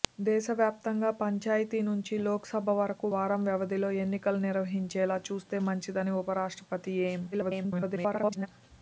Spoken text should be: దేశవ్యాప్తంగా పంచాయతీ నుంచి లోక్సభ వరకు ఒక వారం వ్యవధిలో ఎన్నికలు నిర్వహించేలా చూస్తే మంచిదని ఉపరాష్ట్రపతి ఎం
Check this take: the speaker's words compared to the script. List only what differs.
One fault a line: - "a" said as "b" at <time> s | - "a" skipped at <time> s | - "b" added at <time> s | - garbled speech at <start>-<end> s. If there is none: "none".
- "ఒక" skipped at 3.1 s
- garbled speech at 7.3-8.5 s